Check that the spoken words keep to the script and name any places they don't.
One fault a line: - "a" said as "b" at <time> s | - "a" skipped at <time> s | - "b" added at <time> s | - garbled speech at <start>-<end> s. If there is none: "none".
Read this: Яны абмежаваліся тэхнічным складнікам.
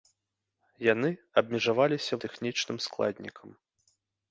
none